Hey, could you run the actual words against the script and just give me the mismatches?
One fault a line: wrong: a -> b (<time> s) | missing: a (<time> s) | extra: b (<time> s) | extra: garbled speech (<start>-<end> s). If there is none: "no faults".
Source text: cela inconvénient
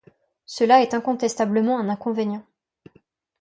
extra: est incontestablement un (0.8 s)